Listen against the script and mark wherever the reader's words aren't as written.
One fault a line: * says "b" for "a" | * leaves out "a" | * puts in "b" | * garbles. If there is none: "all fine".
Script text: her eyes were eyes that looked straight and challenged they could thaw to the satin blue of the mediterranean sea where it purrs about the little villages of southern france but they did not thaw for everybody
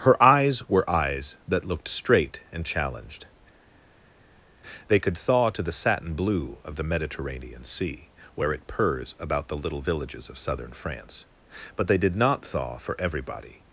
all fine